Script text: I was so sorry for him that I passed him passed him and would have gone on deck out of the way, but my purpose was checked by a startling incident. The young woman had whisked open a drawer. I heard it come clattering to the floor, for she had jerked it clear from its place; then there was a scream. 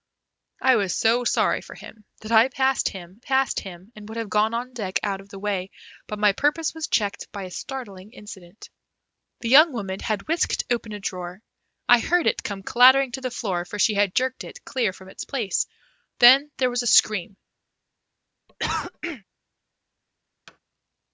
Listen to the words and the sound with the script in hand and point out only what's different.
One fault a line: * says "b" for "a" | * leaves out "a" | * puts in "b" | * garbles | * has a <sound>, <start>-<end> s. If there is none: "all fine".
* has a cough, 18.5-19.2 s
* has a thud, 20.5-20.6 s